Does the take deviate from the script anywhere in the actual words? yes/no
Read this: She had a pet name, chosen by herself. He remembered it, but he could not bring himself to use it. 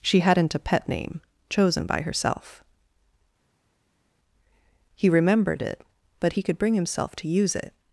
yes